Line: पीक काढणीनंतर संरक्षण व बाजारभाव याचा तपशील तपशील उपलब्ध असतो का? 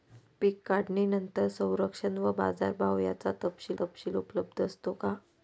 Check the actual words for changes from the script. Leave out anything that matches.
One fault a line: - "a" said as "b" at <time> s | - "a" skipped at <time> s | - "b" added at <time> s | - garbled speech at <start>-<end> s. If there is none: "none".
none